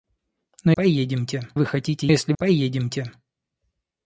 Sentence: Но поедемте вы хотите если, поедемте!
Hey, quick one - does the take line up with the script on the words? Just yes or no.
yes